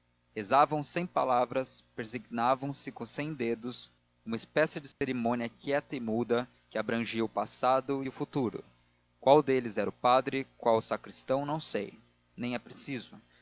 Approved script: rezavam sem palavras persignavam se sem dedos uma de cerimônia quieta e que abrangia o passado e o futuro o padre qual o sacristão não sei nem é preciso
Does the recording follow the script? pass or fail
fail